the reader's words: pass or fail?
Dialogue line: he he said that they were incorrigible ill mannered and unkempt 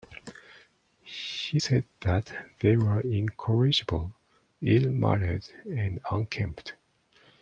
fail